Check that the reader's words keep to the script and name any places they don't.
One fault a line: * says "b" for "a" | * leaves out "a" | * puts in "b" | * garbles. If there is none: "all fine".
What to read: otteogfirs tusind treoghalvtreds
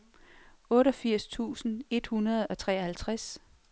* puts in "et hundrede og"